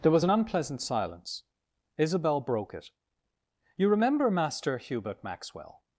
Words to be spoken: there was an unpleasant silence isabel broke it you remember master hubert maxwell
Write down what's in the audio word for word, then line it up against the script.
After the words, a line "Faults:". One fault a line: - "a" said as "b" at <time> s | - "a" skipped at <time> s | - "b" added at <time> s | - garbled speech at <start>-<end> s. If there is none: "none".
there was an unpleasant silence isabel broke it you remember master hubert maxwell
Faults:
none